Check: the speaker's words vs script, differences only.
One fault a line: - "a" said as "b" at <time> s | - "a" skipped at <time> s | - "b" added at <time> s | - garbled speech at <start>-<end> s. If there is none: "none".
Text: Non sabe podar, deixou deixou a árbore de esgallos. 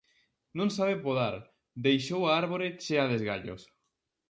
- "deixou" skipped at 2.2 s
- "chea" added at 2.8 s